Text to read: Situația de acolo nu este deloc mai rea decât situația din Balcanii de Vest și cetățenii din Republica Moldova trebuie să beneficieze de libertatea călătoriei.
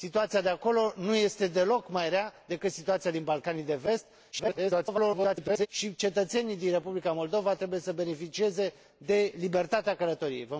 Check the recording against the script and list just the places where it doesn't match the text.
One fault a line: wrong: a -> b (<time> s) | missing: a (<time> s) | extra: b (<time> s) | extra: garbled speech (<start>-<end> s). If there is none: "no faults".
extra: garbled speech (4.3-5.7 s)